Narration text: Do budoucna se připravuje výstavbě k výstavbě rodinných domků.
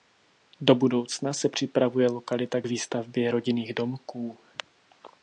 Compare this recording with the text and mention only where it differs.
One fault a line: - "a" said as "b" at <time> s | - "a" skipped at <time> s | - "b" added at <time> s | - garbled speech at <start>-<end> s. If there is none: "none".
- "výstavbě" said as "lokalita" at 2.1 s